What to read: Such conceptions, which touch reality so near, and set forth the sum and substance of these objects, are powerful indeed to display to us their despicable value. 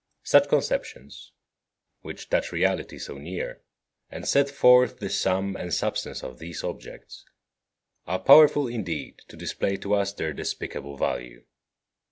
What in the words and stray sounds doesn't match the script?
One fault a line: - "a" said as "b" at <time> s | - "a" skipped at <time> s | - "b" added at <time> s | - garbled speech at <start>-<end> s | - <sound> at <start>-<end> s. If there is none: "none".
none